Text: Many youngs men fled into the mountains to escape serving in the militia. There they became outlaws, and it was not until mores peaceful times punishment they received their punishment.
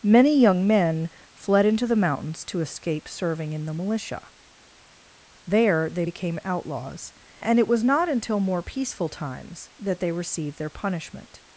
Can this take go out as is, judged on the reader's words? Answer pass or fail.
fail